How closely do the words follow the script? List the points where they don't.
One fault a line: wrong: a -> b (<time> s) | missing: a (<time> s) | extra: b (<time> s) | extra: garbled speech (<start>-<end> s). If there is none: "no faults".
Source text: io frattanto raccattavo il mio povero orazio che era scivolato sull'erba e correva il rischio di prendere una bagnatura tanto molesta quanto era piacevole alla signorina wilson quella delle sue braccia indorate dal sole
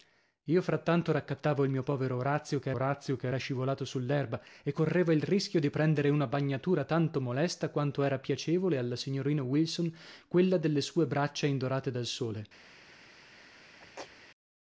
extra: orazio che (2.7 s)